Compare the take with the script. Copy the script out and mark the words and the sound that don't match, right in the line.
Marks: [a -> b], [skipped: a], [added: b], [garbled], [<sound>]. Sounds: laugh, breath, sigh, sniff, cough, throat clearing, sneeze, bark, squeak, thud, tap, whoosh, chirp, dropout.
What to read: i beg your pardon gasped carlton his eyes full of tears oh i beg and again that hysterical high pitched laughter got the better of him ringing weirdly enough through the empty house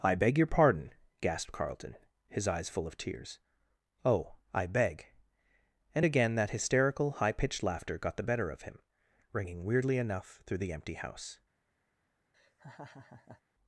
i beg your pardon gasped carlton his eyes full of tears oh i beg and again that hysterical high pitched laughter got the better of him ringing weirdly enough through the empty house [laugh]